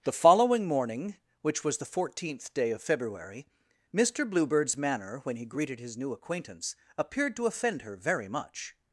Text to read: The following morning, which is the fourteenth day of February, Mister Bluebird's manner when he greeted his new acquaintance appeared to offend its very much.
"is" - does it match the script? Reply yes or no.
no